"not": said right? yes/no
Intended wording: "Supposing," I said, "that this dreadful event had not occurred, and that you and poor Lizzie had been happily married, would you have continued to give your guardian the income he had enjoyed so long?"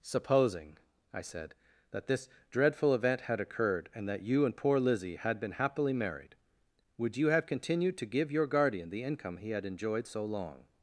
no